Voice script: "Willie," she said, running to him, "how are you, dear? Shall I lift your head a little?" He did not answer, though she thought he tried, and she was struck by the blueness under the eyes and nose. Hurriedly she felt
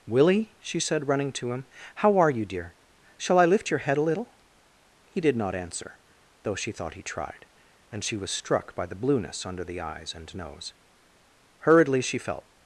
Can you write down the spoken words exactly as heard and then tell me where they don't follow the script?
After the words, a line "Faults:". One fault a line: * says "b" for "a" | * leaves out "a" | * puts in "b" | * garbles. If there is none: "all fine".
"Willie," she said, running to him, "how are you, dear? Shall I lift your head a little?" He did not answer, though she thought he tried, and she was struck by the blueness under the eyes and nose. Hurriedly she felt
Faults:
all fine